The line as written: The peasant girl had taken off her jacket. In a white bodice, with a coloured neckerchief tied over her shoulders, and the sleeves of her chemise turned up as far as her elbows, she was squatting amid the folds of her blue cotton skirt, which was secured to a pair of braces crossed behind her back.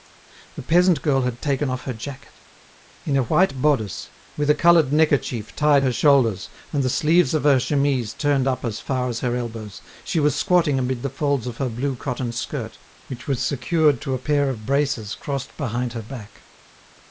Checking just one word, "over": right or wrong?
wrong